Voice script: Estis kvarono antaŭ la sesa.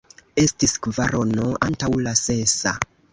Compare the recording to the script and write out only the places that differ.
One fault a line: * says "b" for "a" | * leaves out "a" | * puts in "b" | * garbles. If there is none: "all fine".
all fine